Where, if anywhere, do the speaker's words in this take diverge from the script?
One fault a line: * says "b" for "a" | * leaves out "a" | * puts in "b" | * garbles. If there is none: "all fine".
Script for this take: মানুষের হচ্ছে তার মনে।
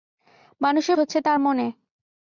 all fine